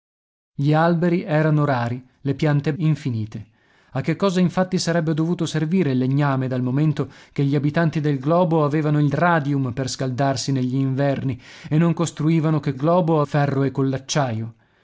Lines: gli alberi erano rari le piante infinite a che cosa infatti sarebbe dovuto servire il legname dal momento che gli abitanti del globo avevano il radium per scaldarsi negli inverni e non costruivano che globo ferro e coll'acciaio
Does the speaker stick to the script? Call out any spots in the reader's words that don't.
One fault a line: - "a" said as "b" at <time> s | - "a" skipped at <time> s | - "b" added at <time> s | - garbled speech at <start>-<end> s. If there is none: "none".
none